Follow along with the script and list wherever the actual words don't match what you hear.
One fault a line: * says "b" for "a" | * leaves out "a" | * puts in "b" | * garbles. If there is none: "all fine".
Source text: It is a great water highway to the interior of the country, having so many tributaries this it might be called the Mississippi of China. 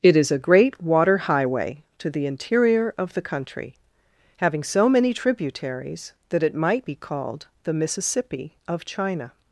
* says "that" for "this"